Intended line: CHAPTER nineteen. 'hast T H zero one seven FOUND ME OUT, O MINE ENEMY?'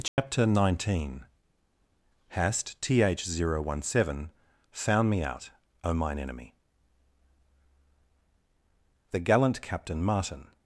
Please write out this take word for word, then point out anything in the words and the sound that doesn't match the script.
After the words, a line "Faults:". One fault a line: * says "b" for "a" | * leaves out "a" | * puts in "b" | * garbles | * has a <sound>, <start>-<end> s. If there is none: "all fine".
CHAPTER nineteen. 'hast T H zero one seven FOUND ME OUT, O MINE ENEMY?' The gallant Captain Martin
Faults:
* has a dropout, 0.1-0.2 s
* puts in "The gallant Captain Martin"